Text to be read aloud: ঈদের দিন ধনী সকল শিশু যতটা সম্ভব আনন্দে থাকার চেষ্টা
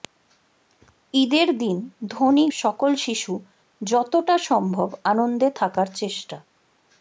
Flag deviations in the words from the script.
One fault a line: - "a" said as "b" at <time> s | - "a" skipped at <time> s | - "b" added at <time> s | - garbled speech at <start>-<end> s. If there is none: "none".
none